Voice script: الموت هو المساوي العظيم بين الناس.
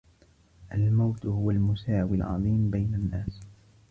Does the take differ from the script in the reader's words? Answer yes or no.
no